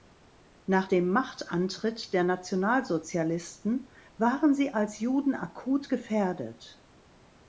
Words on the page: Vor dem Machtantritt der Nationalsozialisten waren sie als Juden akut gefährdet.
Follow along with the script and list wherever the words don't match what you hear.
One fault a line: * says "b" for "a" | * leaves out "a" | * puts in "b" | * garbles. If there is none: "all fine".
* says "Nach" for "Vor"